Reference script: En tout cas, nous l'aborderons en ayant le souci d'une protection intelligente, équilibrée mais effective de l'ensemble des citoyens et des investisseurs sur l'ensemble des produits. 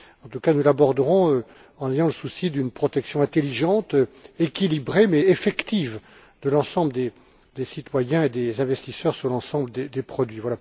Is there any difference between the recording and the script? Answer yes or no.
no